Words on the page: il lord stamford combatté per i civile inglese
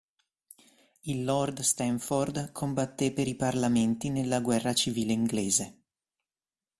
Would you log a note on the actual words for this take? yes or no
yes